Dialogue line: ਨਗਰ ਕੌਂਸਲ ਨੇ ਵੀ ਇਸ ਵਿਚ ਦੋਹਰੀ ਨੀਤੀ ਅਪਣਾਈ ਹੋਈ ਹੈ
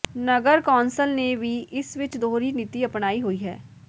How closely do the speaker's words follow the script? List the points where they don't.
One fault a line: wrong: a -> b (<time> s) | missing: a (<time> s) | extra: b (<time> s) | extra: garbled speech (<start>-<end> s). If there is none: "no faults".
no faults